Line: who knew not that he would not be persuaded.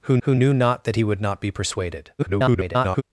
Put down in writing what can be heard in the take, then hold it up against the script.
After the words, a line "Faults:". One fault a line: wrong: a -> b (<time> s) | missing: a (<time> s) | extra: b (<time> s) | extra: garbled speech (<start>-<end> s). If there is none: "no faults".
who who knew not that he would not be persuaded. [garbled]
Faults:
extra: who (0.2 s)
extra: garbled speech (2.2-3.0 s)